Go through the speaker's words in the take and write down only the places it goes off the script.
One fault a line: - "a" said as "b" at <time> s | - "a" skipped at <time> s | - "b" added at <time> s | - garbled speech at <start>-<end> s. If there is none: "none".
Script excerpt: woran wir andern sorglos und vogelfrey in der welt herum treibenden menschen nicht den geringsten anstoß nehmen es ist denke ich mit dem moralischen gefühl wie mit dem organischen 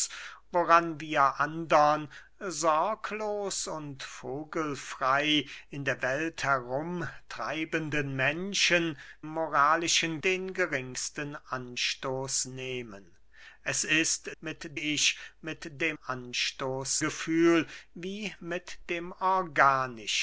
- "nicht" said as "moralischen" at 9.2 s
- "denke" said as "mit" at 14.4 s
- "moralischen" said as "anstoß" at 15.9 s